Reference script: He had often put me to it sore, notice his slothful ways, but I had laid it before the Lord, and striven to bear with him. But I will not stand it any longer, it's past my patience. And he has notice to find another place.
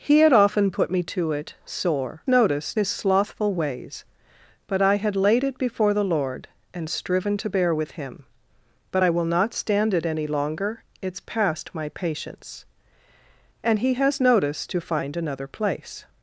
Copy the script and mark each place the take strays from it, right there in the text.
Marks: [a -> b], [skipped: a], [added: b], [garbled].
He had often put me to it sore, notice his slothful ways, but I had laid it before the Lord, and striven to bear with him. But I will not stand it any longer, it's past my patience. And he has notice to find another place.